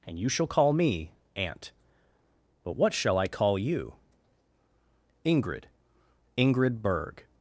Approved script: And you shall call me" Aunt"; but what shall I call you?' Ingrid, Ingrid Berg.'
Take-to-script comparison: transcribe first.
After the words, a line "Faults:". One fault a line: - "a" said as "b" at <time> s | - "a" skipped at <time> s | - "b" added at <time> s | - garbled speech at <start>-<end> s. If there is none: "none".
And you shall call me" Aunt"; but what shall I call you?' Ingrid, Ingrid Berg.'
Faults:
none